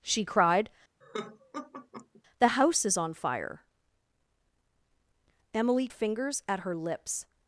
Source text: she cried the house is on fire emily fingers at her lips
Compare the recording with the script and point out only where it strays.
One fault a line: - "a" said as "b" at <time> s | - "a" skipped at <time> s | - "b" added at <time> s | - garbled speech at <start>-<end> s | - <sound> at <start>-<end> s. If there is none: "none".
- laugh at 1.0-2.2 s